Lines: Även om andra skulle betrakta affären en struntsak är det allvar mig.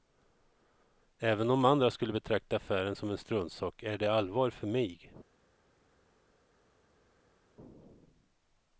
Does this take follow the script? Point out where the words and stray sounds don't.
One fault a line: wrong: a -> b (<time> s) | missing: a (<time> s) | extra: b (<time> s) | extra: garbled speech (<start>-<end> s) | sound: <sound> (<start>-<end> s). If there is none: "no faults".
extra: som (2.9 s)
extra: för (4.5 s)